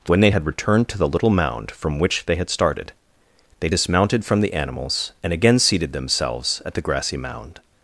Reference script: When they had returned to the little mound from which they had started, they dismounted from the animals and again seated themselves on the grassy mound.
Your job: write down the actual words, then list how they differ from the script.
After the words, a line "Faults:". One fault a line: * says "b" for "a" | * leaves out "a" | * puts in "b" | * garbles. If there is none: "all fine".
When they had returned to the little mound from which they had started, they dismounted from the animals and again seated themselves at the grassy mound.
Faults:
* says "at" for "on"